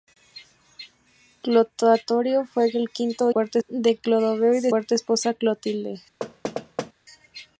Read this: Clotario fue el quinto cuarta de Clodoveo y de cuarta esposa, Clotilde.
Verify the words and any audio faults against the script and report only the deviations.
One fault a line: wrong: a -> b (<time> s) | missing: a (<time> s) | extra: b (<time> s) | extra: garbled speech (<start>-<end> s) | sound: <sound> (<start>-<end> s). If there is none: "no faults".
sound: thud (6.2-6.9 s)